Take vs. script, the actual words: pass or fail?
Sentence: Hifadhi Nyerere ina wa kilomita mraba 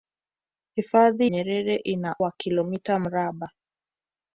pass